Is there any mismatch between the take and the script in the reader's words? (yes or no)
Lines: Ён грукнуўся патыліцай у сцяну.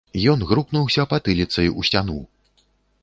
no